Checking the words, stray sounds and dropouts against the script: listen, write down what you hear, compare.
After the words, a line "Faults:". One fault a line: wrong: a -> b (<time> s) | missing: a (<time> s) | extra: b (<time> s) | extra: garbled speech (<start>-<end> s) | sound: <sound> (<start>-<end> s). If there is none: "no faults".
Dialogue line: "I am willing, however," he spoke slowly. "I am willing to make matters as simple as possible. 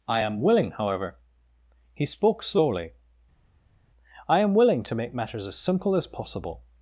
"I am willing, however," he spoke slowly. "I am willing to make matters as simple as possible.
Faults:
no faults